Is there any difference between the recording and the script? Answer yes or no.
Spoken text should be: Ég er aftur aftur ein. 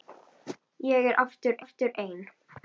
no